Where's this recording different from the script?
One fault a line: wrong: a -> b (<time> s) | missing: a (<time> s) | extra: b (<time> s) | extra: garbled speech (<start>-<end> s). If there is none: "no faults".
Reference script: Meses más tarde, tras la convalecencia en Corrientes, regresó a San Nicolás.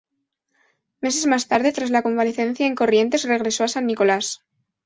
no faults